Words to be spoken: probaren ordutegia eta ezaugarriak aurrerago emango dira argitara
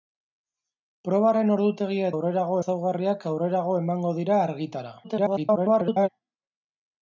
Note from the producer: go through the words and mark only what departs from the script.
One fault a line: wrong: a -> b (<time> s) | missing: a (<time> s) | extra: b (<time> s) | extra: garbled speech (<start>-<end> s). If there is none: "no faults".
wrong: eta -> aurrerago (2.1 s)
extra: garbled speech (5.0-6.1 s)